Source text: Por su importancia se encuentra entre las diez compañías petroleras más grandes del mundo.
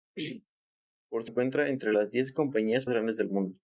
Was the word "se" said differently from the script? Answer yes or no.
yes